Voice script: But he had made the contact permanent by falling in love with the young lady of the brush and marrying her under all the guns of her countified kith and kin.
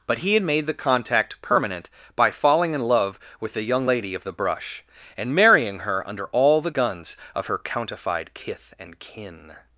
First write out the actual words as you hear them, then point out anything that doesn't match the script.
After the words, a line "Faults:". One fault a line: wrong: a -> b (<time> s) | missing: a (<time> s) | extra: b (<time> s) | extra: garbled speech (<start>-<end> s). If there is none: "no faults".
But he had made the contact permanent by falling in love with the young lady of the brush and marrying her under all the guns of her countified kith and kin.
Faults:
no faults